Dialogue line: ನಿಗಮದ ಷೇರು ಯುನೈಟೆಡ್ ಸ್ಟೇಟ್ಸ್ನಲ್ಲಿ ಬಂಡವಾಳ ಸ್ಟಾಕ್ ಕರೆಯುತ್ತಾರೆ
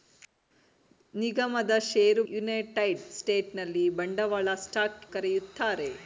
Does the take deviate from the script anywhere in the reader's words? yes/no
no